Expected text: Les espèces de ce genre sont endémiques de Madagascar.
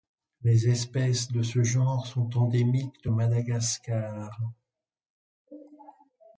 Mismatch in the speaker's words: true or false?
false